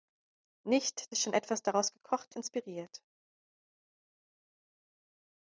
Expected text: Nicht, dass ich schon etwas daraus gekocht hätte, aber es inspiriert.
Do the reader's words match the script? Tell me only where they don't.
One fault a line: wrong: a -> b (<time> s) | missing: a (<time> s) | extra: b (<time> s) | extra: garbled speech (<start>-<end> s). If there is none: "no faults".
missing: dass (1.1 s)
missing: hätte aber es (2.4 s)